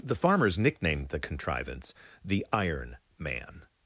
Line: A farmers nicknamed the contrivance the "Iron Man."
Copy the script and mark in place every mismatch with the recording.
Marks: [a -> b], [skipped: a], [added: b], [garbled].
[A -> The] farmers nicknamed the contrivance the "Iron Man."